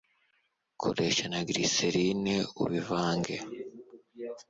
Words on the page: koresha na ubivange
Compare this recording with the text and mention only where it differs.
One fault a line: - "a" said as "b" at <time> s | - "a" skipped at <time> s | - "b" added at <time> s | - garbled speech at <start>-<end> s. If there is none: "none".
- "glycerine" added at 1.5 s